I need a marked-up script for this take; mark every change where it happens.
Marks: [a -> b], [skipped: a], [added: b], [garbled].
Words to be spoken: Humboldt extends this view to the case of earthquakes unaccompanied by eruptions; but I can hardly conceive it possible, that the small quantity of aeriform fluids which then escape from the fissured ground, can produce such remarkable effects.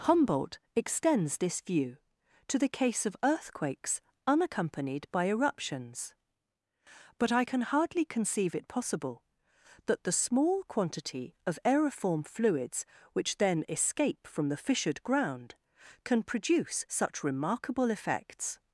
Humboldt extends this view to the case of earthquakes unaccompanied by eruptions; but I can hardly conceive it possible, that the small quantity of aeriform fluids which then escape from the fissured ground, can produce such remarkable effects.